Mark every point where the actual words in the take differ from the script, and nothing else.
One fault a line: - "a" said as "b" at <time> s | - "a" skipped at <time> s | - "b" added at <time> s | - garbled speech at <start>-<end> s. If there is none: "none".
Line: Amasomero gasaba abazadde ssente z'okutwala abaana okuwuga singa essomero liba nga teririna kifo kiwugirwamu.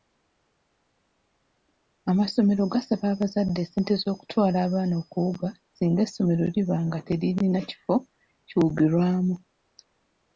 none